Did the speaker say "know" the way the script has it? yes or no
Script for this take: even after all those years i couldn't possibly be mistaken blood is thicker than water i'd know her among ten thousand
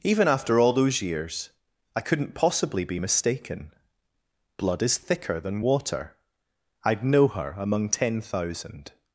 yes